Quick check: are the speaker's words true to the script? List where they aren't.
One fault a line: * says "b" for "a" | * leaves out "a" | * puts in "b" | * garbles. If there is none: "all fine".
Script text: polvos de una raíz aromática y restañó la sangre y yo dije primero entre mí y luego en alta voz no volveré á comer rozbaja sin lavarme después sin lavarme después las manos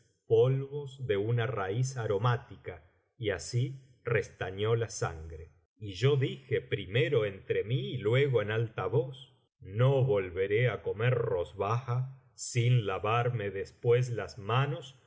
* puts in "así"
* leaves out "sin lavarme después"